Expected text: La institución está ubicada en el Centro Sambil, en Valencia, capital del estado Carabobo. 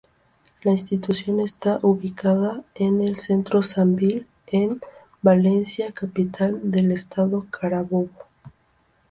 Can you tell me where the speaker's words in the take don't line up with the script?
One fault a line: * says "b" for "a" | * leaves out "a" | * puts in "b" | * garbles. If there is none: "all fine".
all fine